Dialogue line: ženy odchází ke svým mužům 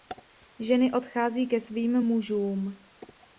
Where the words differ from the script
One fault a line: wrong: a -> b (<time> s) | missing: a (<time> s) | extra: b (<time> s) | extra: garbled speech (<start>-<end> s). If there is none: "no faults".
no faults